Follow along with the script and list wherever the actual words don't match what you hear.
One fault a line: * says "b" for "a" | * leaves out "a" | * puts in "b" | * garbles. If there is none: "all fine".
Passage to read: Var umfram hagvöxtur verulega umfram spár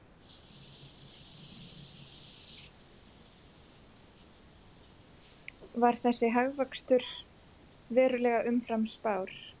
* says "þessi" for "umfram"